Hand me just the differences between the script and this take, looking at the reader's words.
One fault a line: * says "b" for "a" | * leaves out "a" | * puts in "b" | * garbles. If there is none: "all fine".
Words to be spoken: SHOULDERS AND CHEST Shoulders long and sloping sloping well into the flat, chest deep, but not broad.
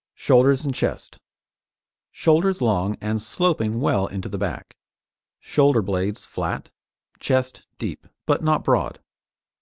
* leaves out "sloping"
* puts in "back shoulder blades"